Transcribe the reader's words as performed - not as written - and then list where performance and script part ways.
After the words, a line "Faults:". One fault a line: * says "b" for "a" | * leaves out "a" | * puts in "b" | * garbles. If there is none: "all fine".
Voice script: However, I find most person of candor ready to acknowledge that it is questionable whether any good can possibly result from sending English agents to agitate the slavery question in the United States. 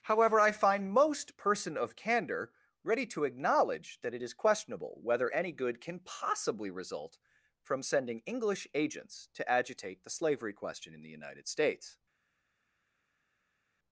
However, I find most person of candor ready to acknowledge that it is questionable whether any good can possibly result from sending English agents to agitate the slavery question in the United States.
Faults:
all fine